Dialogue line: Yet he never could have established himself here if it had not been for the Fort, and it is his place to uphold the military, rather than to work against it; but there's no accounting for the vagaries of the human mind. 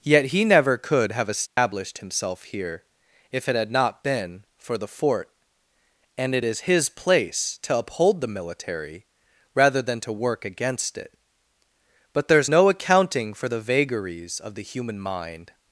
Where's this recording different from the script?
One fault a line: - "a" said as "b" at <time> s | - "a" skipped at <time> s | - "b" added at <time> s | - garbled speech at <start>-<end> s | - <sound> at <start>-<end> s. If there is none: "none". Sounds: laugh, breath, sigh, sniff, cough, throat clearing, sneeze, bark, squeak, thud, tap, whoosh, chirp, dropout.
- dropout at 1.5-1.6 s